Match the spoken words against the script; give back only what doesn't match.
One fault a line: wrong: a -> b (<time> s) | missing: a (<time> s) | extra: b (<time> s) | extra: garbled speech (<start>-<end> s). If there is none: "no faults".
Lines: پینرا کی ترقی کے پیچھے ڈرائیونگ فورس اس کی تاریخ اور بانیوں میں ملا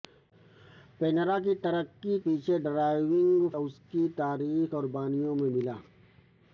missing: کے (2.2 s)
missing: فورس (3.5 s)